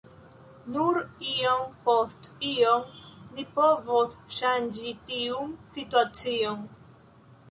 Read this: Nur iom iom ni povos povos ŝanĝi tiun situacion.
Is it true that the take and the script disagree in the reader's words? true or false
true